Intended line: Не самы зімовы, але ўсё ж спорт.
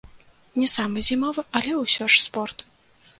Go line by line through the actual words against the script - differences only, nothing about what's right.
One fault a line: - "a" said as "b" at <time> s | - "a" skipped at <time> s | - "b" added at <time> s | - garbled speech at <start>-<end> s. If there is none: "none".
none